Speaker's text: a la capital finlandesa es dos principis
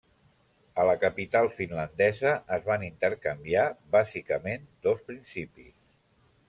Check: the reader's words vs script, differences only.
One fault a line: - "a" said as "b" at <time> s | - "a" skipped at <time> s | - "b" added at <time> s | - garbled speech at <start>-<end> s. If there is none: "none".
- "van intercanviar bàsicament" added at 2.7 s